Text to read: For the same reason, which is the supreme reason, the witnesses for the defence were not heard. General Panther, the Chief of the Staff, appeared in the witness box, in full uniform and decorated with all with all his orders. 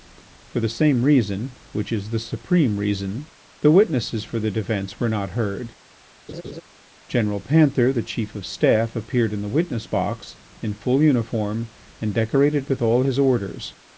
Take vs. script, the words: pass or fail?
fail